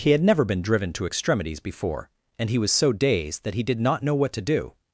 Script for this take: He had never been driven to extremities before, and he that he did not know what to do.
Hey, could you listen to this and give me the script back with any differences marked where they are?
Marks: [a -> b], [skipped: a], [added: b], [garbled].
He had never been driven to extremities before, and he [added: was so dazed] that he did not know what to do.